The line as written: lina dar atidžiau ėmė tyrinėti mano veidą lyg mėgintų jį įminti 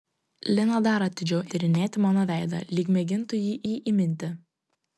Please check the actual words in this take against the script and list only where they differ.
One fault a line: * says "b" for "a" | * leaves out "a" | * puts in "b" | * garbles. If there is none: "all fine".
* leaves out "ėmė"
* puts in "jį"